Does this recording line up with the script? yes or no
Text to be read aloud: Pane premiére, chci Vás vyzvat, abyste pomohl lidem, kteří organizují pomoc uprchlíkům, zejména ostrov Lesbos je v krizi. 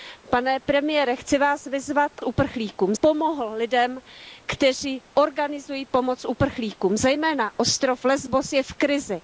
no